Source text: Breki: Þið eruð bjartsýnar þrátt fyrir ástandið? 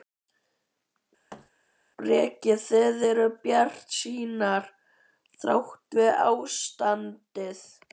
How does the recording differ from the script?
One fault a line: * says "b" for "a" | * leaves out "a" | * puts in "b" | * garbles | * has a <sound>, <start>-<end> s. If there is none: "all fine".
* has a thud, 1.3-1.5 s